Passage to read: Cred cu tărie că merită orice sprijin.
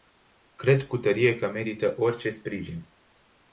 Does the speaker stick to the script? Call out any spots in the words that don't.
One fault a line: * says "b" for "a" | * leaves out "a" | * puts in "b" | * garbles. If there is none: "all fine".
all fine